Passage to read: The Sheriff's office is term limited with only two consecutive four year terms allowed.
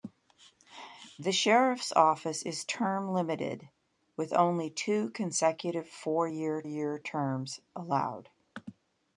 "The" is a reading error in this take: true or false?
false